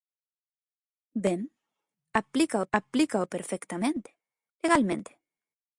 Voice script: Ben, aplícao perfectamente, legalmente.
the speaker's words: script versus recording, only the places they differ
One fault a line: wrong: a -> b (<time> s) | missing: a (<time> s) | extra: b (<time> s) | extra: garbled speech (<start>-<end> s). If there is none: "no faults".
extra: aplícao (2.7 s)